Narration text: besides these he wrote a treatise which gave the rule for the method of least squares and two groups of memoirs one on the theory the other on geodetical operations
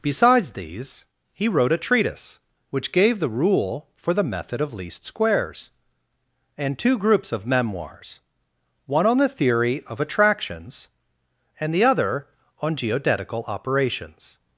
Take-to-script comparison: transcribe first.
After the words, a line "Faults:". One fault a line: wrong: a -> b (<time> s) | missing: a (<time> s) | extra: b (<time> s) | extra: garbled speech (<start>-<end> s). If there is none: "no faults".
besides these he wrote a treatise which gave the rule for the method of least squares and two groups of memoirs one on the theory of attractions and the other on geodetical operations
Faults:
extra: of attractions and (9.8 s)